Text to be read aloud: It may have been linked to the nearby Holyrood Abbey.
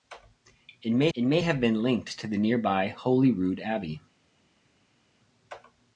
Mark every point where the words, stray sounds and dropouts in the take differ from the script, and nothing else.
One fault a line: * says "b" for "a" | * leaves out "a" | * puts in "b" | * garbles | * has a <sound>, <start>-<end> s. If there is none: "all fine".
* puts in "it may"